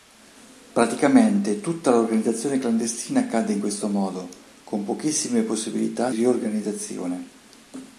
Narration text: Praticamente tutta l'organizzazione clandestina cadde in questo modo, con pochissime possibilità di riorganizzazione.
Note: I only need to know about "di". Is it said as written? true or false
false